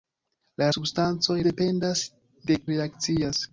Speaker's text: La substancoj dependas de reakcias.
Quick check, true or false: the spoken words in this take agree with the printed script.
true